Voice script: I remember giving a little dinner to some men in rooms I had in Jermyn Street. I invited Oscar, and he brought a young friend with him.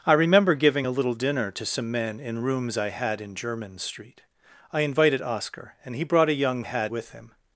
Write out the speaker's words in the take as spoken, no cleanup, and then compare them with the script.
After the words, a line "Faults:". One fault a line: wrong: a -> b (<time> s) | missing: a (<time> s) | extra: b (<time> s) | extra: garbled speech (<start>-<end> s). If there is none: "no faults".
I remember giving a little dinner to some men in rooms I had in Jermyn Street. I invited Oscar, and he brought a young had with him.
Faults:
wrong: friend -> had (6.6 s)